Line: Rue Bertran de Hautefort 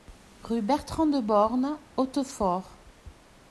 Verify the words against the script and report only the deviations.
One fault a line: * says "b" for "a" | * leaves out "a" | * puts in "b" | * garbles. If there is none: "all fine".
* puts in "Born"